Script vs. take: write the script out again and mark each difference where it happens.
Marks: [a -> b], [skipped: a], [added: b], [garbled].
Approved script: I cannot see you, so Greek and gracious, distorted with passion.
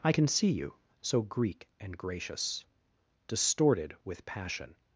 I [cannot -> can] see you, so Greek and gracious, distorted with passion.